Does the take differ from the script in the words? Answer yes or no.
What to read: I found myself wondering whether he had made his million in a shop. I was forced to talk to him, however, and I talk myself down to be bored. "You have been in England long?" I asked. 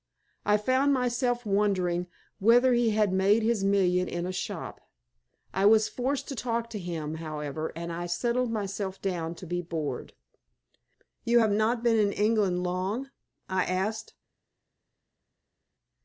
yes